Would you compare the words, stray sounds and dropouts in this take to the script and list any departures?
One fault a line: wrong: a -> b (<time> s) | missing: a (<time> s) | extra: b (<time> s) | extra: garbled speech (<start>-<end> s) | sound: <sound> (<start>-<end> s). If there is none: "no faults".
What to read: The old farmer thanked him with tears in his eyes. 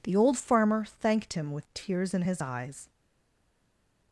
no faults